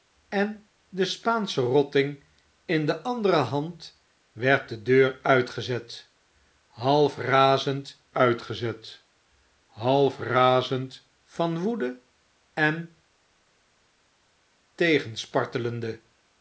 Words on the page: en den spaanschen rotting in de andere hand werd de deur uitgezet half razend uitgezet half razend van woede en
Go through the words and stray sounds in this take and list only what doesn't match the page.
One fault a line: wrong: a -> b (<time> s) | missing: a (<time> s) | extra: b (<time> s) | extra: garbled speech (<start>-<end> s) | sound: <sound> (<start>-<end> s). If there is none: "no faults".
no faults